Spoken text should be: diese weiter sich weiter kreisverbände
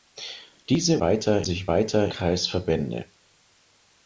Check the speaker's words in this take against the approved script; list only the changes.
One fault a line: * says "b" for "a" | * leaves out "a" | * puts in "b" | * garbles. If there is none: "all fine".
all fine